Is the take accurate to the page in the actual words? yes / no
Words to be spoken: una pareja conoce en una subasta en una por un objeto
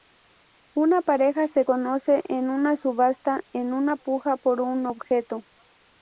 no